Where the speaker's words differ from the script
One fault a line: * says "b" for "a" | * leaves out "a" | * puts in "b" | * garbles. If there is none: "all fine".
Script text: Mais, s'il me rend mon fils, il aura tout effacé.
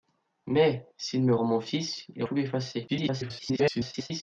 * leaves out "aura"
* garbles